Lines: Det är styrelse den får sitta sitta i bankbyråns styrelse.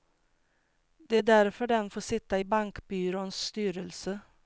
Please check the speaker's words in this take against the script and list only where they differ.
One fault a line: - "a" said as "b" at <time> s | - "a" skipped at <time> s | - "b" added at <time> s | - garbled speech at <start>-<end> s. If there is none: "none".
- "styrelse" said as "därför" at 1.2 s
- "sitta" skipped at 2.4 s